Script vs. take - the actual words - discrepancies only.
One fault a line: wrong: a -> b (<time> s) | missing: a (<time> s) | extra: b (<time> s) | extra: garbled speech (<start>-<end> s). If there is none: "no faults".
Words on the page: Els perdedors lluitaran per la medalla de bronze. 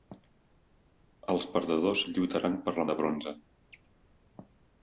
missing: medalla (2.9 s)